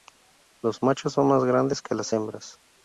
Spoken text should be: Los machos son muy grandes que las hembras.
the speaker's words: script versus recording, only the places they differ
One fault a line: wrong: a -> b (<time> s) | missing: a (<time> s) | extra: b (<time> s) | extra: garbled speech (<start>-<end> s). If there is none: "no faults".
wrong: muy -> más (1.3 s)